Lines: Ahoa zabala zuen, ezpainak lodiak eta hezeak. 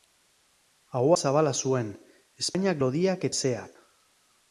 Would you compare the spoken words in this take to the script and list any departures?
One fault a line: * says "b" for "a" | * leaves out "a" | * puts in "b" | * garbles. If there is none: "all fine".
* leaves out "eta"